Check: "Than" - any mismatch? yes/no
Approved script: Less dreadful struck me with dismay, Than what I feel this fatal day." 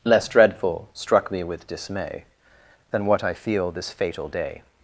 no